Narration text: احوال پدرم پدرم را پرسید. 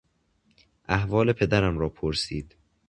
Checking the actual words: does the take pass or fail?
fail